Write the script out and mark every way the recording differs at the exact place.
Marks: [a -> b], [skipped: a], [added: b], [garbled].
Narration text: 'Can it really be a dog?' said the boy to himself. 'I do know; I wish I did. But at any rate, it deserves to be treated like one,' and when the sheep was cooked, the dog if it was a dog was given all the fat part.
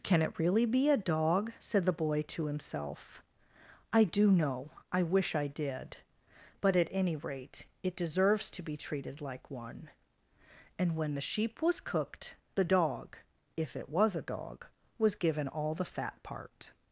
'Can it really be a dog?' said the boy to himself. 'I do know; I wish I did. But at any rate, it deserves to be treated like one,' and when the sheep was cooked, the dog if it was a dog was given all the fat part.